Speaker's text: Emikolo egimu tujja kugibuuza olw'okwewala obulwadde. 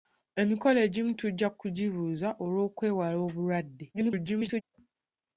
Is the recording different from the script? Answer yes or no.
yes